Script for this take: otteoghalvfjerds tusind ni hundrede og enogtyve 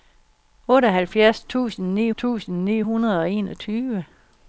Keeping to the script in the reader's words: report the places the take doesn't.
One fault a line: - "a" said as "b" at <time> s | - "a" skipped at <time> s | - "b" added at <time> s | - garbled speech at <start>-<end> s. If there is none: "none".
- "tusind ni" added at 2.2 s